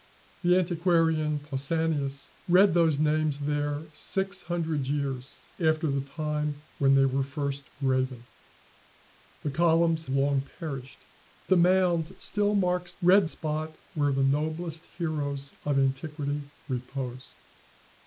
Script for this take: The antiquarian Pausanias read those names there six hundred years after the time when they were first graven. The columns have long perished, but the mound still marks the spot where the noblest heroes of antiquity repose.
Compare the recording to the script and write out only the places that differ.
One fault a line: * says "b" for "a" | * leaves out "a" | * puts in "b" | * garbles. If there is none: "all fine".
* leaves out "have"
* leaves out "but"
* says "read" for "the"